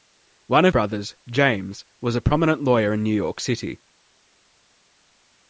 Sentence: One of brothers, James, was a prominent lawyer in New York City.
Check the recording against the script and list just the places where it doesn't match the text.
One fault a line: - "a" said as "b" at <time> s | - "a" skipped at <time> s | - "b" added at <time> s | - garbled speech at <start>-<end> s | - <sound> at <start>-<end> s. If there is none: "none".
none